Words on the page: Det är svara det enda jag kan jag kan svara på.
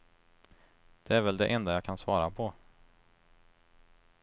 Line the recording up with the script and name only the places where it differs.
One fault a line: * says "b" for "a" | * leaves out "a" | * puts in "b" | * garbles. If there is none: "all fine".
* says "väl" for "svara"
* leaves out "jag kan"